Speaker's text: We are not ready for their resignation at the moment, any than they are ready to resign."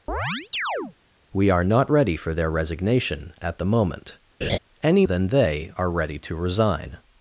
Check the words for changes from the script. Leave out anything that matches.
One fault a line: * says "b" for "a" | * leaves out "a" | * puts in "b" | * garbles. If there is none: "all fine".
all fine